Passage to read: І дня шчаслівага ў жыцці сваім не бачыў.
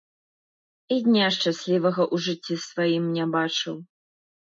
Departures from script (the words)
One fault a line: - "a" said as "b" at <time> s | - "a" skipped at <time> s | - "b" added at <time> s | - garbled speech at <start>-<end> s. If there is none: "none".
none